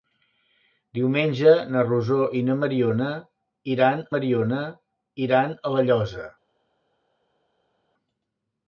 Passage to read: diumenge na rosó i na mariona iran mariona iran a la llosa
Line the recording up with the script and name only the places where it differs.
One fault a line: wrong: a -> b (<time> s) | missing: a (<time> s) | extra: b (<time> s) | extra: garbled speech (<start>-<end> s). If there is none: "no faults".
no faults